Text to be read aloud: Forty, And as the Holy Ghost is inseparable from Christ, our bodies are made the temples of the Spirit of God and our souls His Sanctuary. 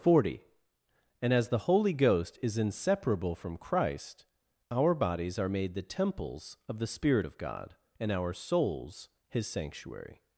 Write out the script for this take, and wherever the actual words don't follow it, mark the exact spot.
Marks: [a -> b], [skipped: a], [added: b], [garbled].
Forty, And as the Holy Ghost is inseparable from Christ, our bodies are made the temples of the Spirit of God and our souls His Sanctuary.